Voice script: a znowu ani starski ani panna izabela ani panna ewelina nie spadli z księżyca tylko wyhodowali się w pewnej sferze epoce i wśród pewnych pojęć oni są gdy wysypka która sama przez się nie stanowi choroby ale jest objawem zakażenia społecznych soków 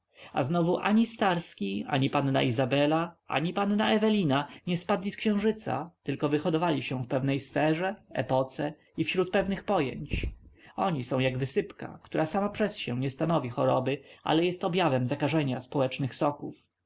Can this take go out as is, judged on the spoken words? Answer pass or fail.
fail